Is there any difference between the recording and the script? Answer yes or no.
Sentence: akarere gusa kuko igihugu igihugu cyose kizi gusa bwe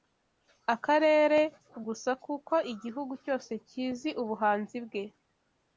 yes